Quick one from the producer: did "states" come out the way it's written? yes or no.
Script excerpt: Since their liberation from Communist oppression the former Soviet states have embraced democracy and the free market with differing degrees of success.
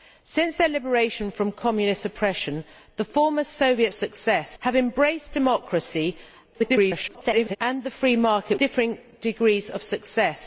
no